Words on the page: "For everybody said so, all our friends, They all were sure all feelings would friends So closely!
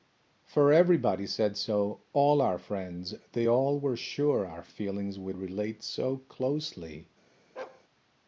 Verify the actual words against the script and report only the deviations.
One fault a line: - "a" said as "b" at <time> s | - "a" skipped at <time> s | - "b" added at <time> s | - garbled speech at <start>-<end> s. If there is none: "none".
- "all" said as "our" at 4.5 s
- "friends" said as "relate" at 5.4 s